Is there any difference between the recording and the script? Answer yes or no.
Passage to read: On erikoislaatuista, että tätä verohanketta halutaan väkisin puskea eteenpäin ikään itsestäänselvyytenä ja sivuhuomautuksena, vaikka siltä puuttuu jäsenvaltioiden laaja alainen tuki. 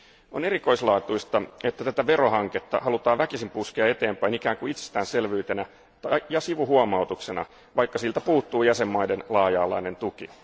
yes